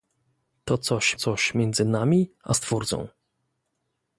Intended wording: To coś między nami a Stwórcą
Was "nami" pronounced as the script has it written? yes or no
yes